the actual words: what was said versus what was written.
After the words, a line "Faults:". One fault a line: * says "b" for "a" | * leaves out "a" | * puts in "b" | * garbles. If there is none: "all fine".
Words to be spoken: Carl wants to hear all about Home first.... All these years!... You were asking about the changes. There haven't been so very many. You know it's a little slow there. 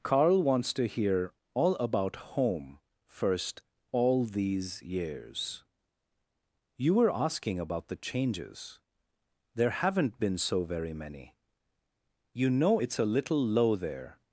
Carl wants to hear all about Home first.... All these years!... You were asking about the changes. There haven't been so very many. You know it's a little low there.
Faults:
* says "low" for "slow"